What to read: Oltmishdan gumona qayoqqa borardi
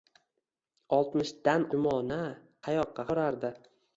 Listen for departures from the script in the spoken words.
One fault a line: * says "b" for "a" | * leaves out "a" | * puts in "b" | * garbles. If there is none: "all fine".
all fine